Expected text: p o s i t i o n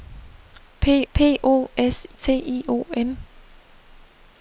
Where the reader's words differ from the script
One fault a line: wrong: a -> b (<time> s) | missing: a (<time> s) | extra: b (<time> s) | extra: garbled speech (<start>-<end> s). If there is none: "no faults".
extra: p (1.1 s)
missing: i (2.1 s)